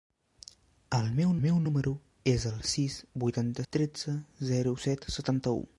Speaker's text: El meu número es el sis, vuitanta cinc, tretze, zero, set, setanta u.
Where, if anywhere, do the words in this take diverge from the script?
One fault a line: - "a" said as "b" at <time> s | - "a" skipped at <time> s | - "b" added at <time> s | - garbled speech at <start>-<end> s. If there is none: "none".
- "meu" added at 1.4 s
- "cinc" skipped at 3.6 s